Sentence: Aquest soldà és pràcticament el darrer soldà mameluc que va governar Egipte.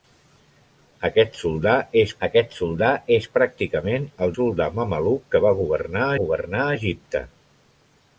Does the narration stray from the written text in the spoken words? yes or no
yes